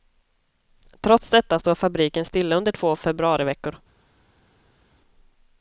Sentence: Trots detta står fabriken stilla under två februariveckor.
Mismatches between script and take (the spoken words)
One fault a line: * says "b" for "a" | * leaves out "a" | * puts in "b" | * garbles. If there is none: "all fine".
all fine